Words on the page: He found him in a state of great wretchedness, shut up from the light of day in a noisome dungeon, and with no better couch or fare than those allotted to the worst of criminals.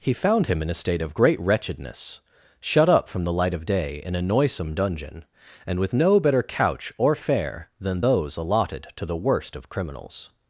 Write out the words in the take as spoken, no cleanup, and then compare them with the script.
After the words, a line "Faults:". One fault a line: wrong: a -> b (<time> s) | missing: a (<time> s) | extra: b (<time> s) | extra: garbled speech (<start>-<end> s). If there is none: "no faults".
He found him in a state of great wretchedness, shut up from the light of day in a noisome dungeon, and with no better couch or fare than those allotted to the worst of criminals.
Faults:
no faults